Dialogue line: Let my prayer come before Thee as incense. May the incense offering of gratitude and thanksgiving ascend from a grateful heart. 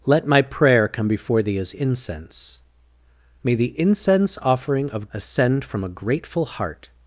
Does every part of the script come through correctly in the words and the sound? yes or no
no